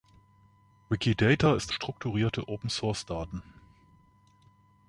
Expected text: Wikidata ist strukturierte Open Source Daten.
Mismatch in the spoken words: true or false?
false